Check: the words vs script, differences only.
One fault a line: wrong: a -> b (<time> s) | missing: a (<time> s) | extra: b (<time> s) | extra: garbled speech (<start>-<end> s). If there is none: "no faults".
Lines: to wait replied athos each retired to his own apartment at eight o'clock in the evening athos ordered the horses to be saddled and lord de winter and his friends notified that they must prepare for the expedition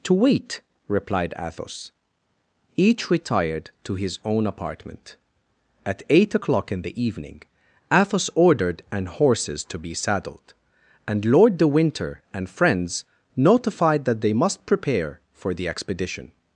wrong: the -> an (8.9 s)
missing: his (12.5 s)